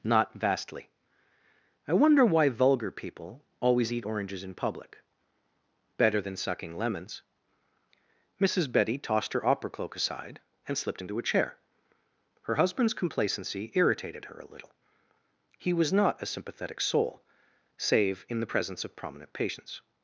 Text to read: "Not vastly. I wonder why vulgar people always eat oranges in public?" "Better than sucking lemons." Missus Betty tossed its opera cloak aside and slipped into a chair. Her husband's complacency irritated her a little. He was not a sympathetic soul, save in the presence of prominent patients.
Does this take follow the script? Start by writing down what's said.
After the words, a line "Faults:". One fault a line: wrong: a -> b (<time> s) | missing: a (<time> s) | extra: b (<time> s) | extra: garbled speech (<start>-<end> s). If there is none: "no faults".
"Not vastly. I wonder why vulgar people always eat oranges in public?" "Better than sucking lemons." Missus Betty tossed her opera cloak aside and slipped into a chair. Her husband's complacency irritated her a little. He was not a sympathetic soul, save in the presence of prominent patients.
Faults:
wrong: its -> her (9.3 s)